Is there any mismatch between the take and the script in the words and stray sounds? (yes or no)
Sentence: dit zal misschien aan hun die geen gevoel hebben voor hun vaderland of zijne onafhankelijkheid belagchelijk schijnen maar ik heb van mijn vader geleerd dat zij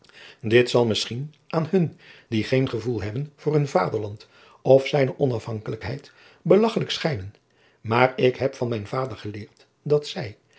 no